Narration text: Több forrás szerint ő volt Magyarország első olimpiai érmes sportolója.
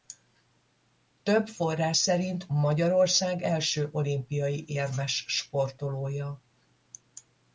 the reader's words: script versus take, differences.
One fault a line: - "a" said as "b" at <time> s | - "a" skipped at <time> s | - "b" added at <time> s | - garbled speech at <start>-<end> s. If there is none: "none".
- "ő volt" skipped at 2.5 s